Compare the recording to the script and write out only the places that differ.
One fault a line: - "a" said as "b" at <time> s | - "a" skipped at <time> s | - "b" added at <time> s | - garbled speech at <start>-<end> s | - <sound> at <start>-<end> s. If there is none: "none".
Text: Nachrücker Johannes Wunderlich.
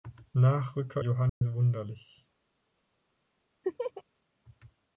- dropout at 1.3-1.4 s
- laugh at 3.6-4.0 s